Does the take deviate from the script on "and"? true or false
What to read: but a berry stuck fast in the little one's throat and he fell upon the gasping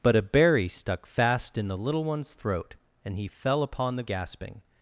false